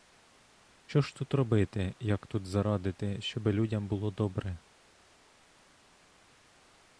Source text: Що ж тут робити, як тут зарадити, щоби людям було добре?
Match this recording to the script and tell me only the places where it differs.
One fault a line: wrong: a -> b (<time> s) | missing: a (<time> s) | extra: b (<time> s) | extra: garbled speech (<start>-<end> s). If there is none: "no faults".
no faults